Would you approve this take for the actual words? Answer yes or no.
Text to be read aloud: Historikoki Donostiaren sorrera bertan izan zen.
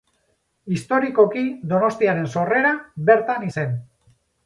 no